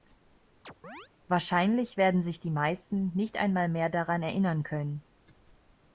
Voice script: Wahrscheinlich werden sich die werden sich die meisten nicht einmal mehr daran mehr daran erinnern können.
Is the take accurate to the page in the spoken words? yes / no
no